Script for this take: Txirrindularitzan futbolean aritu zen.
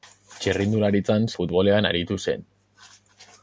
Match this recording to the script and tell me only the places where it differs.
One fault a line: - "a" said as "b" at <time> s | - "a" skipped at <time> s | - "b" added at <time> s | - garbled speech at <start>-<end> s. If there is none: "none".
none